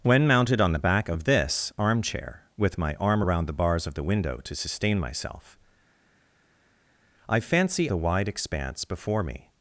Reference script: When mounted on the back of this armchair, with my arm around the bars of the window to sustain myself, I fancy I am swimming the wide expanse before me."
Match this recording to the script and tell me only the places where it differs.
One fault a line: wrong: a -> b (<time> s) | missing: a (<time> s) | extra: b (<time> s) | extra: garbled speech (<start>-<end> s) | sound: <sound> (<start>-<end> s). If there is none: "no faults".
missing: I am swimming (7.9 s)